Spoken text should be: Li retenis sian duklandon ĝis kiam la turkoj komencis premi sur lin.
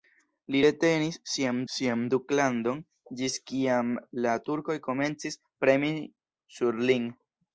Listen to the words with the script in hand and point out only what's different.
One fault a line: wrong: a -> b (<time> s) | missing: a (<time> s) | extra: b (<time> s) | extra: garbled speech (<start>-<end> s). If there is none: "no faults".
extra: sian (1.8 s)